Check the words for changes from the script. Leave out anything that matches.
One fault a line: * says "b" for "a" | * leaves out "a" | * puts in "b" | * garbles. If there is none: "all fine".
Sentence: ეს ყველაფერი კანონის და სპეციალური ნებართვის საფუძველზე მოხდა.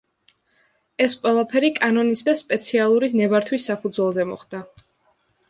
all fine